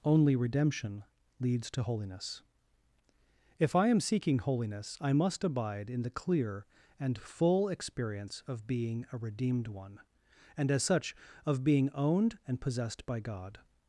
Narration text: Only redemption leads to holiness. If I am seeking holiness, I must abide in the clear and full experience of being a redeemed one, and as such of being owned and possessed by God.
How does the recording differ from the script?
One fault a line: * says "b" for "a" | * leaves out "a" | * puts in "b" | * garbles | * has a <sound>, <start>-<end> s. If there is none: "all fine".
all fine